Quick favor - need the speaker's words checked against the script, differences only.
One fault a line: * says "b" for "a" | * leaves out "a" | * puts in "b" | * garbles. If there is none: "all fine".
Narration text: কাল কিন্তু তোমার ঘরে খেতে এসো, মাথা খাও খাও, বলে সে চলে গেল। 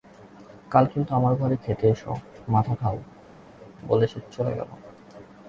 * says "আমার" for "তোমার"
* leaves out "খাও"